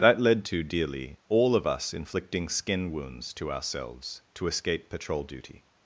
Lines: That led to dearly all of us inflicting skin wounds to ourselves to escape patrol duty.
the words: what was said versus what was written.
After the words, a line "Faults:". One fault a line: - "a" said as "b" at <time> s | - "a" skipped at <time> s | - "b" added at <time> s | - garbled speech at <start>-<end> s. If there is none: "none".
That led to dearly all of us inflicting skin wounds to ourselves to escape patrol duty.
Faults:
none